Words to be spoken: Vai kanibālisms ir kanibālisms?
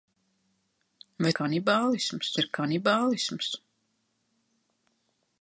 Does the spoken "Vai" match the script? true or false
true